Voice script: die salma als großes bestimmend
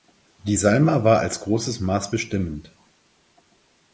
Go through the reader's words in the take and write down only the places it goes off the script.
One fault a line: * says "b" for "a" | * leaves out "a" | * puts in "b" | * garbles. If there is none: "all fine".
* puts in "war"
* puts in "maß"